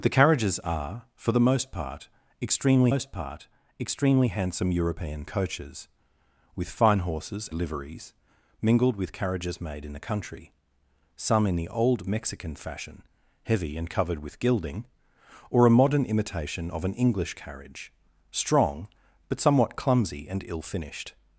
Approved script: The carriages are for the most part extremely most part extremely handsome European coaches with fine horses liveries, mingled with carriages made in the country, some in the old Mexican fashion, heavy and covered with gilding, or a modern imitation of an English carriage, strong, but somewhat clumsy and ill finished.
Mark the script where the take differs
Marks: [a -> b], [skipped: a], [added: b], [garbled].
The carriages are for the most part extremely most part extremely handsome European coaches with fine horses liveries, mingled with carriages made in the country, some in the old Mexican fashion, heavy and covered with gilding, or a modern imitation of an English carriage, strong, but somewhat clumsy and ill finished.